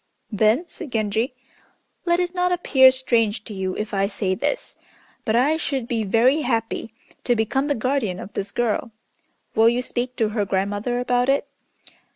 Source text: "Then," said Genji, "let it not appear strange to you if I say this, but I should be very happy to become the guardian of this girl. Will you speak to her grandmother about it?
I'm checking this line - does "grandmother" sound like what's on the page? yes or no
yes